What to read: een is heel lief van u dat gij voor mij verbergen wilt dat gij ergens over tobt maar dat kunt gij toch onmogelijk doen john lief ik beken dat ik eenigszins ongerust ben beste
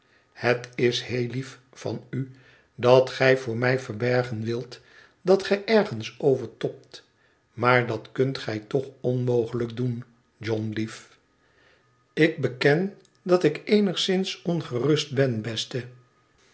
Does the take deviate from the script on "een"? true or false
true